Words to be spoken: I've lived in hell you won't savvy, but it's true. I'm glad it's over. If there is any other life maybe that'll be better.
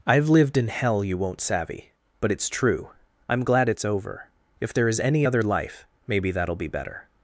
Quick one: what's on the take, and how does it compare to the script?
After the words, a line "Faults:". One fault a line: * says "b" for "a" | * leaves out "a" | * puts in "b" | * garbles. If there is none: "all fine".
I've lived in hell you won't savvy, but it's true. I'm glad it's over. If there is any other life maybe that'll be better.
Faults:
all fine